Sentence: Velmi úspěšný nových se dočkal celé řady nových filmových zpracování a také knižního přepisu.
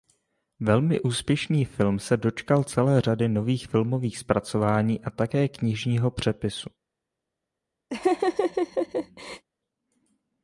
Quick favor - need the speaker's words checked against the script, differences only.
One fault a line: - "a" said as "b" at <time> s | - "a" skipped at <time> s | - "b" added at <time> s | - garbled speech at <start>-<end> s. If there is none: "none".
- "nových" said as "film" at 1.6 s